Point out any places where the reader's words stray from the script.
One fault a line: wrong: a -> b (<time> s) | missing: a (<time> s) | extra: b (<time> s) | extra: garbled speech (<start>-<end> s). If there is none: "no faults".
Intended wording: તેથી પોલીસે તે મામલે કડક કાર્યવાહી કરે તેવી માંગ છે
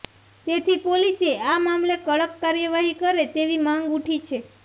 wrong: તે -> આ (1.4 s)
extra: ઉઠી (3.9 s)